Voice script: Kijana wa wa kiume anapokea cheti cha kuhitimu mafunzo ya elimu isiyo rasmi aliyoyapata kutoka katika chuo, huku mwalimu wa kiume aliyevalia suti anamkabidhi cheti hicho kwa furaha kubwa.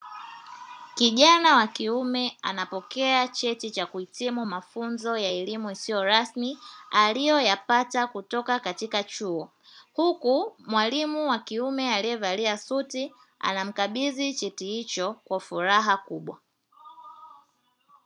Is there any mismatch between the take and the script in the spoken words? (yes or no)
yes